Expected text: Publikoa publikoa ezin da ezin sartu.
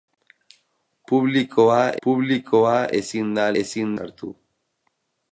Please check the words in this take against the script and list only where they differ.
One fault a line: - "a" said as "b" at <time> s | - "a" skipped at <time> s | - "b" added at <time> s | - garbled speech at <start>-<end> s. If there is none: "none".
none